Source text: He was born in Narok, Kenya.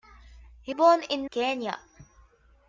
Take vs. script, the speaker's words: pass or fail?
fail